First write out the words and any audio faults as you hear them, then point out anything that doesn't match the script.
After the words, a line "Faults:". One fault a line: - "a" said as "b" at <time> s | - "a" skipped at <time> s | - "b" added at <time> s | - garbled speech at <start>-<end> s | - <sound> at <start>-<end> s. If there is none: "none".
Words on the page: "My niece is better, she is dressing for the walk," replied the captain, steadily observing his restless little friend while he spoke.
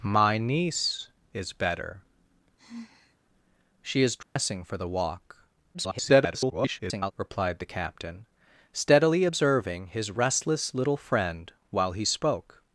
"My niece is better, she is dressing for the walk," [garbled] replied the captain, steadily observing his restless little friend while he spoke.
Faults:
- sigh at 2.6-3.2 s
- dropout at 4.2-4.4 s
- garbled speech at 5.7-7.1 s